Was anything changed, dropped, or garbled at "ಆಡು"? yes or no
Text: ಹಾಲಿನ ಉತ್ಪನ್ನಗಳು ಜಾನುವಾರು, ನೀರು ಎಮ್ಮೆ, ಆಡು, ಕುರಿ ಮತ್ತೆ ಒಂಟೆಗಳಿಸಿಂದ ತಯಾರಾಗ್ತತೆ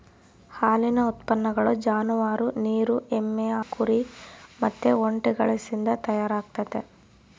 yes